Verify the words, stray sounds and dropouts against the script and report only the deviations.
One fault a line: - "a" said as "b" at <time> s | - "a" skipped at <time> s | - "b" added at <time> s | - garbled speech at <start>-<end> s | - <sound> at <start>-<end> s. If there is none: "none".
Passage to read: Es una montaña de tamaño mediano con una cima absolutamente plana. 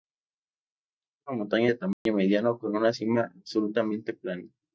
- dropout at 1.9-2.1 s